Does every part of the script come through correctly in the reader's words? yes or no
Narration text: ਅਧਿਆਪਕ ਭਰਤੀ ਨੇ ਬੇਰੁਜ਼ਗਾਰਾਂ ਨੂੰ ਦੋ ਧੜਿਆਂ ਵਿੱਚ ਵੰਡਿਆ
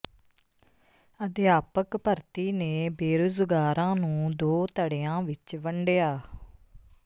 yes